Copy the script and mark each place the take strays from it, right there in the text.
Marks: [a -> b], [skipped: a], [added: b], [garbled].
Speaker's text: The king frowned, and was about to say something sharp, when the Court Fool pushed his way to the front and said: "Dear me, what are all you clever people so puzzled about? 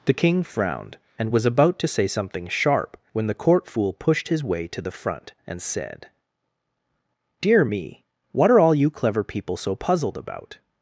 The king frowned, and was about to say something sharp, when the Court Fool pushed his way to the front and said: "Dear me, what are all you clever people so puzzled about?